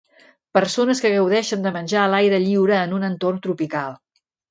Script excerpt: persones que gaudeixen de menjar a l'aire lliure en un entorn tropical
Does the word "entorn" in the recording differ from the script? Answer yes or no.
no